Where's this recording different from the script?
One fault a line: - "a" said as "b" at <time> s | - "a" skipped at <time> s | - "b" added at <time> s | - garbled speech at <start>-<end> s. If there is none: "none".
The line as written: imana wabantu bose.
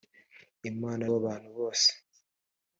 none